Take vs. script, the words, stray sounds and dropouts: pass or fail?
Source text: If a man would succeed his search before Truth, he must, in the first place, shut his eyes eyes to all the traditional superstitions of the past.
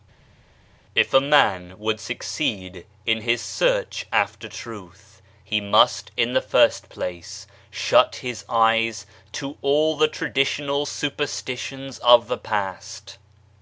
fail